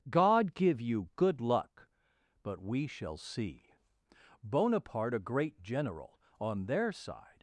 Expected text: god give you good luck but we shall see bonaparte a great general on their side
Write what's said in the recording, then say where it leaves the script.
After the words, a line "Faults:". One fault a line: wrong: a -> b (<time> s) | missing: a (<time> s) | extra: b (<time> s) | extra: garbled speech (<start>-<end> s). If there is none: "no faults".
god give you good luck but we shall see bonaparte a great general on their side
Faults:
no faults